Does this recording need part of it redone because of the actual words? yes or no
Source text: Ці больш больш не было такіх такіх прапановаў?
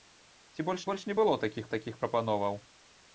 no